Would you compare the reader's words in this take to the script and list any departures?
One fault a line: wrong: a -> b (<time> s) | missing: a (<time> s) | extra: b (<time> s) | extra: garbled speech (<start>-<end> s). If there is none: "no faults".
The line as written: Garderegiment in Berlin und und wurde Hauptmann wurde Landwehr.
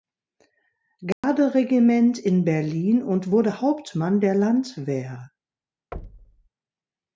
missing: und (3.3 s)
wrong: wurde -> der (4.2 s)